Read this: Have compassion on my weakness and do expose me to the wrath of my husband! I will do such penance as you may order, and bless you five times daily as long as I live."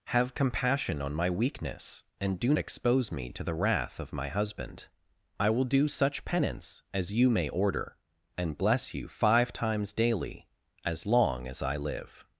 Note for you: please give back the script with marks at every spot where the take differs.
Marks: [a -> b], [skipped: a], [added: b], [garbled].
Have compassion on my weakness and do expose me to the wrath of my husband! I will do such penance as you may order, and bless you five times daily as long as I live."